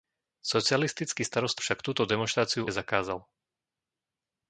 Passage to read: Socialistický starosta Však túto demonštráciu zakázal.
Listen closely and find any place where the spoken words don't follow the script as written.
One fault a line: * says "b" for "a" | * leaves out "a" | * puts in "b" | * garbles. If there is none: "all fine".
all fine